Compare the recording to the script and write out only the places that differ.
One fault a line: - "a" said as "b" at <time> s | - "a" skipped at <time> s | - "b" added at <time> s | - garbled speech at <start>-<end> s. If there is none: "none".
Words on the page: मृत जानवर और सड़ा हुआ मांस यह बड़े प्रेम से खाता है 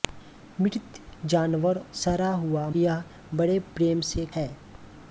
- "और" skipped at 1.8 s
- "मांस" skipped at 2.7 s
- "खाता" skipped at 4.2 s